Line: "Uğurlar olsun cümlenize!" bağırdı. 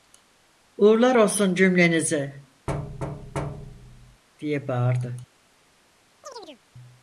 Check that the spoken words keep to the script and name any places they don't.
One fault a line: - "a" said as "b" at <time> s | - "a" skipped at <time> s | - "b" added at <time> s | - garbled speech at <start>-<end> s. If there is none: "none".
- "diye" added at 4.4 s